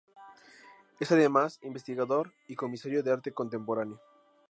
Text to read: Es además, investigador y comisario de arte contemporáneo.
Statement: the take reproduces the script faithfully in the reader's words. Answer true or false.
true